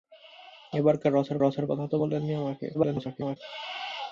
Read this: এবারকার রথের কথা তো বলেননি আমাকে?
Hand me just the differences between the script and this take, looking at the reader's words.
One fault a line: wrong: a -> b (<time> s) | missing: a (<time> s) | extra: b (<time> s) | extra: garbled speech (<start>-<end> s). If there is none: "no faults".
extra: রথের (1.4 s)
extra: garbled speech (2.7-3.4 s)